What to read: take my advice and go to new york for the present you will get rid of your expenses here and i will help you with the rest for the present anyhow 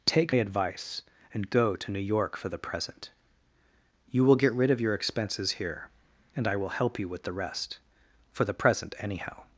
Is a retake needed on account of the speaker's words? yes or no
yes